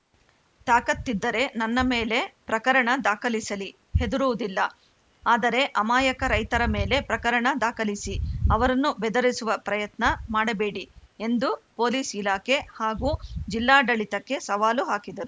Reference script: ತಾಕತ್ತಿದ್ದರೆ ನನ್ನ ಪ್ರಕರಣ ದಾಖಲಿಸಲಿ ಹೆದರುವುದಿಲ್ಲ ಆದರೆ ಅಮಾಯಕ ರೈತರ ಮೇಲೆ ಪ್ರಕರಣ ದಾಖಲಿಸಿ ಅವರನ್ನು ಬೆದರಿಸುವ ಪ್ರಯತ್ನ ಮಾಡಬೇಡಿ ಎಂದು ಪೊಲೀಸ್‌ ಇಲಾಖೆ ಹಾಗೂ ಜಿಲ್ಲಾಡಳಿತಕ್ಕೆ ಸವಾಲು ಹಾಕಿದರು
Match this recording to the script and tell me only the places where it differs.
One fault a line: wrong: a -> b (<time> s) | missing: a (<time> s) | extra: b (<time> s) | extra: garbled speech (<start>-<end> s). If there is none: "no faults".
extra: ಮೇಲೆ (1.9 s)